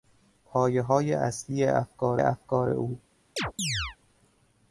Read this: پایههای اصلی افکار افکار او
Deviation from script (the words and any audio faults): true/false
true